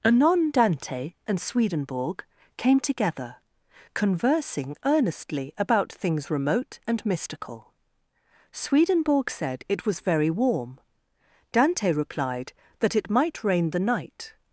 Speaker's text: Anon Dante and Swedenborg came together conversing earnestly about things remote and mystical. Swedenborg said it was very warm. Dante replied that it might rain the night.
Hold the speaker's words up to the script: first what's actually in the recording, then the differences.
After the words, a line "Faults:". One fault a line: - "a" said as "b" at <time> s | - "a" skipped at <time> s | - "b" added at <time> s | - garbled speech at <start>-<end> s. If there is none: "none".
Anon Dante and Swedenborg came together conversing earnestly about things remote and mystical. Swedenborg said it was very warm. Dante replied that it might rain the night.
Faults:
none